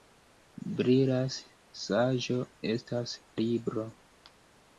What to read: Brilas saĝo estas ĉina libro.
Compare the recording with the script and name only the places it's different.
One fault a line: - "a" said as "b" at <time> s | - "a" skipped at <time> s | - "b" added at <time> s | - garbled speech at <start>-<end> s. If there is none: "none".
- "ĉina" skipped at 3.1 s